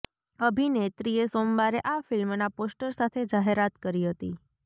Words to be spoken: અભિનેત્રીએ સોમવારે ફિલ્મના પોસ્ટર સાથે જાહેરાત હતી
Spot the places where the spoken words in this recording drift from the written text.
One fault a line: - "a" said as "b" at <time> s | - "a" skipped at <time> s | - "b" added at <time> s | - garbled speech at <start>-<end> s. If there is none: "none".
- "આ" added at 1.9 s
- "કરી" added at 3.8 s